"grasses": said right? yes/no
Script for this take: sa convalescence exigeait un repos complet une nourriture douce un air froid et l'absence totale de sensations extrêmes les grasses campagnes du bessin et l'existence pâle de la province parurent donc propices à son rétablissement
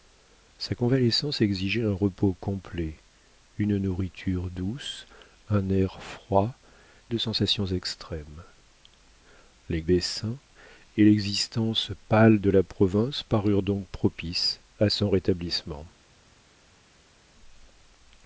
no